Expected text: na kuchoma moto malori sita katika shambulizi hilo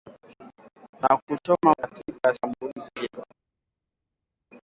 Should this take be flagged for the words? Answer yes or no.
yes